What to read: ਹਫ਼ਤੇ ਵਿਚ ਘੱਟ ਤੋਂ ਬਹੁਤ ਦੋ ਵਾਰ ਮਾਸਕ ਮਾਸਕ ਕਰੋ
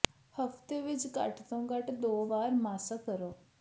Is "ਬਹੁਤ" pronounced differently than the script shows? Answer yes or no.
yes